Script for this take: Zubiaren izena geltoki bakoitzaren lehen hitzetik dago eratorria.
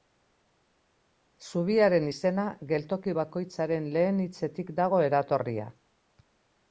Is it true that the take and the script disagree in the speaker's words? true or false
false